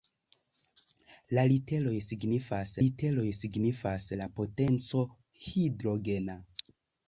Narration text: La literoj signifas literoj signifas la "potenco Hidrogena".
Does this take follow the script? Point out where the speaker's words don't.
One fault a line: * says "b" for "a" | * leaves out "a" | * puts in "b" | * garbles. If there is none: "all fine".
all fine